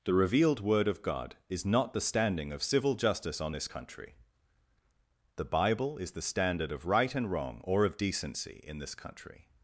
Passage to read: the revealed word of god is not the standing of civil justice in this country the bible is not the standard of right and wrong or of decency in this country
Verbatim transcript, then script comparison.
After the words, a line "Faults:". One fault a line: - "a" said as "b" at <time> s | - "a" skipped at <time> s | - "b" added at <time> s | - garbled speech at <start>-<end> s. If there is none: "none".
the revealed word of god is not the standing of civil justice on this country the bible is the standard of right and wrong or of decency in this country
Faults:
- "in" said as "on" at 3.4 s
- "not" skipped at 6.1 s